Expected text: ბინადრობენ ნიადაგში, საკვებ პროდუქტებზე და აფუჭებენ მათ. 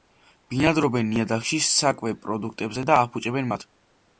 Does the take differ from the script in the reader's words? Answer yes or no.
no